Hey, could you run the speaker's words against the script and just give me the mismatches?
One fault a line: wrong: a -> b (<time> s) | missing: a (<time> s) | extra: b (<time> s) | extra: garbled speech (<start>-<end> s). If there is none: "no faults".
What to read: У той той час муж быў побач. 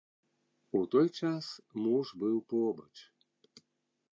missing: той (1.1 s)